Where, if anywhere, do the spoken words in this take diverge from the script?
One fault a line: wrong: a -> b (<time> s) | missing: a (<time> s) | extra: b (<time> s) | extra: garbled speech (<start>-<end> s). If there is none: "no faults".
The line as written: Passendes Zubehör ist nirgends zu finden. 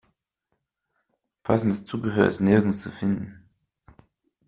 no faults